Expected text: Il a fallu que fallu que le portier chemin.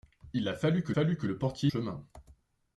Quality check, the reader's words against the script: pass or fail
pass